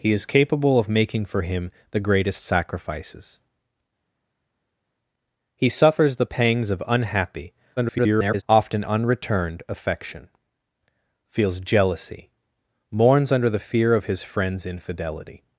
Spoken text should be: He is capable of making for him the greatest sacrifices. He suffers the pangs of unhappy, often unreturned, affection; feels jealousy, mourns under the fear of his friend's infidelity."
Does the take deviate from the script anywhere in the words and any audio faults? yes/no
yes